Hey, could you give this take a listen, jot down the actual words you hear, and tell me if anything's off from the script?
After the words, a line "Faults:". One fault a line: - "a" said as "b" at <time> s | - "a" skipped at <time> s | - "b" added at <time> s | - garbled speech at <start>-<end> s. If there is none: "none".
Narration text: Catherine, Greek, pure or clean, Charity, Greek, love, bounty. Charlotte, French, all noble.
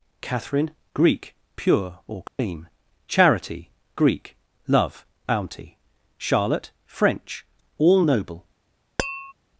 Catherine, Greek, pure or clean, Charity, Greek, love, bounty. Charlotte, French, all noble.
Faults:
none